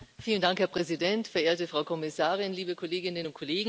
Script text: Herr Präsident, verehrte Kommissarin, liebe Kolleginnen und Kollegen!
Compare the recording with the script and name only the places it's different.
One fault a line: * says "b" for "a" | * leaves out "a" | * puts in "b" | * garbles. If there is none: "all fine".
* puts in "Frau"